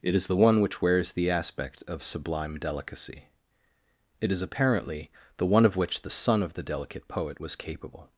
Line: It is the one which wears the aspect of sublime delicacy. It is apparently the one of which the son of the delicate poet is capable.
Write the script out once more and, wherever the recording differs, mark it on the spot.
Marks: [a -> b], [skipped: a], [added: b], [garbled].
It is the one which wears the aspect of sublime delicacy. It is apparently the one of which the son of the delicate poet [is -> was] capable.